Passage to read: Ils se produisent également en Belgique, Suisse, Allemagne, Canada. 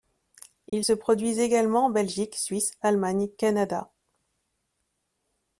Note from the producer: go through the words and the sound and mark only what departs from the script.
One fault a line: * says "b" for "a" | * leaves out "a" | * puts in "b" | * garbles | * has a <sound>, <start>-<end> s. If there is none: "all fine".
* has a dropout, 0.7-0.7 s